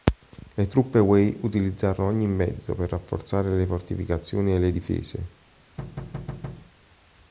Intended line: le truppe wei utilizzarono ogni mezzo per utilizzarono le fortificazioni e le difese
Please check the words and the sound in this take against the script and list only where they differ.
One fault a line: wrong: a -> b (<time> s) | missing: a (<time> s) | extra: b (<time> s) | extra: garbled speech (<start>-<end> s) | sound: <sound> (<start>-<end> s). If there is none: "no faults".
wrong: utilizzarono -> rafforzare (2.9 s)
sound: thud (5.8-6.7 s)